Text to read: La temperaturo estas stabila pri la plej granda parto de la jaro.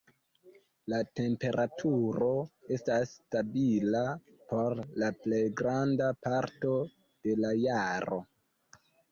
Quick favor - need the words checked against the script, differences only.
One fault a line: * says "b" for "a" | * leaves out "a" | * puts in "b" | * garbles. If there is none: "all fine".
* says "por" for "pri"